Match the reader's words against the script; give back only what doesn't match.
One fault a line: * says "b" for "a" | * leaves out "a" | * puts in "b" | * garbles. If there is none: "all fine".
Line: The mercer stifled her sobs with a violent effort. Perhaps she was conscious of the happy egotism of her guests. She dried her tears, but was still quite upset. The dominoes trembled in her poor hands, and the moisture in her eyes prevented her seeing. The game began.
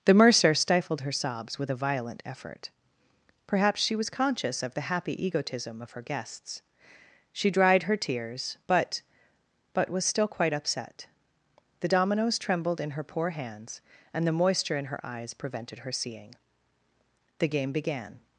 * puts in "but"